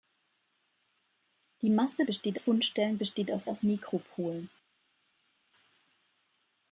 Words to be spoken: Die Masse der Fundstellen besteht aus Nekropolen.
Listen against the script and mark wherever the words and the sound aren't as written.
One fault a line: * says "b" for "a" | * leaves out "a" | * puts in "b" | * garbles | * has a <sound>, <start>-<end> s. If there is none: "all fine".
* says "besteht" for "der"
* puts in "aus"